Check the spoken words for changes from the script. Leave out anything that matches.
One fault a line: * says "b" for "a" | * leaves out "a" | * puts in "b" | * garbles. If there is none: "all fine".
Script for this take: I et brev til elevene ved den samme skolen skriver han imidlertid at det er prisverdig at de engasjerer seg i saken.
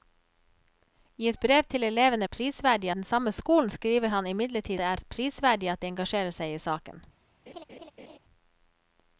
* says "prisverdig" for "ved"
* leaves out "at"